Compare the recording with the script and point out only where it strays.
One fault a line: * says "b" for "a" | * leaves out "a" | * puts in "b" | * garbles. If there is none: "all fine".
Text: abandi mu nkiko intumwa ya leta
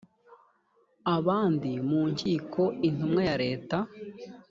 all fine